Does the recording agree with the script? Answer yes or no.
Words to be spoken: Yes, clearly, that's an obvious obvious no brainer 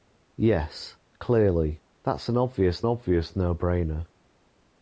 yes